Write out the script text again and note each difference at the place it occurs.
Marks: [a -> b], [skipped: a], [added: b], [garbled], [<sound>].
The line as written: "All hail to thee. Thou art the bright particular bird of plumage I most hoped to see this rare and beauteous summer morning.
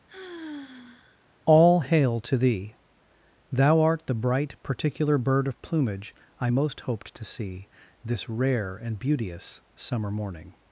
[sigh] "All hail to thee. Thou art the bright particular bird of plumage I most hoped to see this rare and beauteous summer morning.